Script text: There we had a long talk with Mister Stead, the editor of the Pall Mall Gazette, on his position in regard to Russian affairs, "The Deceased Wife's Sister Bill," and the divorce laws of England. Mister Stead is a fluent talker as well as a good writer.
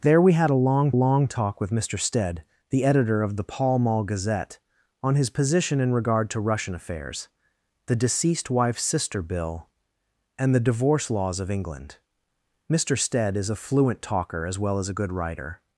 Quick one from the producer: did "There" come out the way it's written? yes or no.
yes